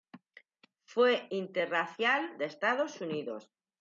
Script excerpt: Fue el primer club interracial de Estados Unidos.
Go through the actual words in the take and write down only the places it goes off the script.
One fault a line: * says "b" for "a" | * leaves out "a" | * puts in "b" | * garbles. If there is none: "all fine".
* leaves out "el primer club"